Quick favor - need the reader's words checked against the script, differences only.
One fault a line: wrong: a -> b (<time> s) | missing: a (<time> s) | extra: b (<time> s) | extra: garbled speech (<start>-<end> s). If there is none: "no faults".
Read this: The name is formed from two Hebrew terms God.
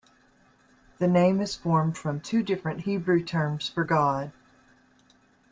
extra: different (2.4 s)
extra: for (3.7 s)